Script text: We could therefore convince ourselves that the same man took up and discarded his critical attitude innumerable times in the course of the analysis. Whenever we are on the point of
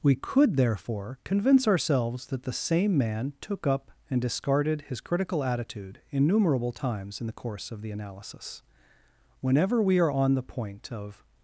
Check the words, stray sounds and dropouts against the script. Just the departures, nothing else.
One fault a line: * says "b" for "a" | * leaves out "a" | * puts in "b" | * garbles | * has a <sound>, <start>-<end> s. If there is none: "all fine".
all fine